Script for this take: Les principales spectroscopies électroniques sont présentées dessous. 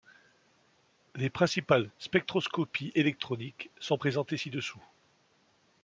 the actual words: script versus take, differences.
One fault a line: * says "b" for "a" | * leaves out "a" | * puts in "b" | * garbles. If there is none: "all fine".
* puts in "ci"